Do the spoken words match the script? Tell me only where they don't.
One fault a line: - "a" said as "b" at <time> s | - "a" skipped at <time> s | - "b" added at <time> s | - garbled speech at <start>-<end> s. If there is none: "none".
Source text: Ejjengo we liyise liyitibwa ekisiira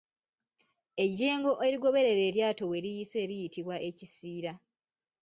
- "erigoberera eryato" added at 1.6 s